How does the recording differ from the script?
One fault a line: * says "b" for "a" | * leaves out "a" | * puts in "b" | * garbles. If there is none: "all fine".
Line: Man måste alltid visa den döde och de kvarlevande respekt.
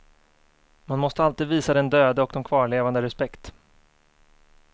all fine